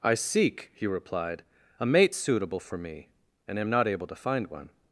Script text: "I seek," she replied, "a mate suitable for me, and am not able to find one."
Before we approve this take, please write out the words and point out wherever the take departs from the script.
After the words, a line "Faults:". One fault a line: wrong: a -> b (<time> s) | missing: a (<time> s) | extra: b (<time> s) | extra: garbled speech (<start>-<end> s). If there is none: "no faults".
"I seek," he replied, "a mate suitable for me, and am not able to find one."
Faults:
wrong: she -> he (0.7 s)